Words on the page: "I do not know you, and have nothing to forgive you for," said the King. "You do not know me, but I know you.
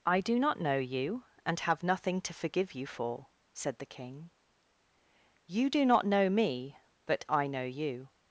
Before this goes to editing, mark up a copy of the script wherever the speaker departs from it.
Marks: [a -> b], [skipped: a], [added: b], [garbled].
"I do not know you, and have nothing to forgive you for," said the King. "You do not know me, but I know you.